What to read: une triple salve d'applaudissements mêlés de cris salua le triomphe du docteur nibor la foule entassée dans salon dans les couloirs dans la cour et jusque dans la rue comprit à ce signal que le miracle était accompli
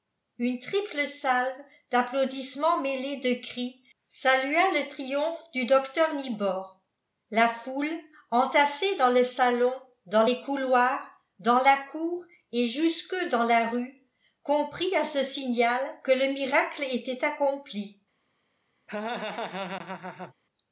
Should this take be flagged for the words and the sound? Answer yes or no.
yes